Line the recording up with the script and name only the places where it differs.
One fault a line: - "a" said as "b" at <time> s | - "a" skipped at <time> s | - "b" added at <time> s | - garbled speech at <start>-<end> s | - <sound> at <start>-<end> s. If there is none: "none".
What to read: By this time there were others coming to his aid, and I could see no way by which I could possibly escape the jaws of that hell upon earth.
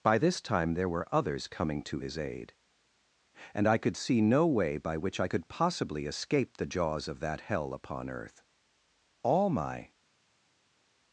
- "All my" added at 9.2 s